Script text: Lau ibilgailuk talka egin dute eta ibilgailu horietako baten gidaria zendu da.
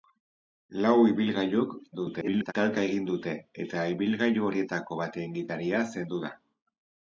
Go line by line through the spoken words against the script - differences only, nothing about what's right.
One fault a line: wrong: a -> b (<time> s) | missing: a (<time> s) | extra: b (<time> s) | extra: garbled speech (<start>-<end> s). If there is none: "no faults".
extra: garbled speech (1.9-2.5 s)